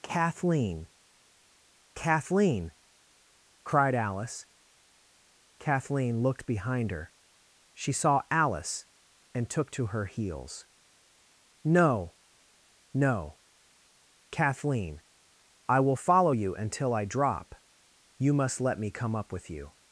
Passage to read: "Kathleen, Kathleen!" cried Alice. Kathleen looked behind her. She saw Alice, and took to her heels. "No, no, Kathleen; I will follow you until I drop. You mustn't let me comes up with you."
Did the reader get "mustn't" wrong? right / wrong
wrong